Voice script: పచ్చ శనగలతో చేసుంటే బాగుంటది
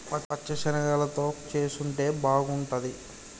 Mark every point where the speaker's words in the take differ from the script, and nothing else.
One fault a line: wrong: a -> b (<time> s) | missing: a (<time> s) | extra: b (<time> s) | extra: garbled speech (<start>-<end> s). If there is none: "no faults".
no faults